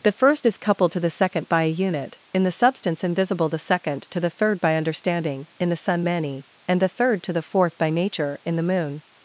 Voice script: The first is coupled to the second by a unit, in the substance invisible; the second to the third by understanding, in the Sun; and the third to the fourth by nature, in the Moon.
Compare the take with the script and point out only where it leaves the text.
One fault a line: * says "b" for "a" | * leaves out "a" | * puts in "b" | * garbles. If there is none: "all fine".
* puts in "many"